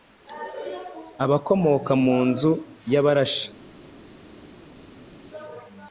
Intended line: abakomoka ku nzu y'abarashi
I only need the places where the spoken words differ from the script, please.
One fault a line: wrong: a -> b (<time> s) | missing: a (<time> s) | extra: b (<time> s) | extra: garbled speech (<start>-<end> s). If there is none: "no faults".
wrong: ku -> mu (2.0 s)